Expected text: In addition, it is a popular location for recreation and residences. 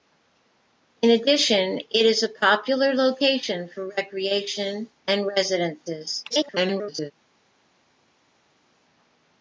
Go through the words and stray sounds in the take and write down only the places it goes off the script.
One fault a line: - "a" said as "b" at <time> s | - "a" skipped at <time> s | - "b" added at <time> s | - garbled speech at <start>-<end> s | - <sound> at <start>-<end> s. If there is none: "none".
- garbled speech at 6.3-7.1 s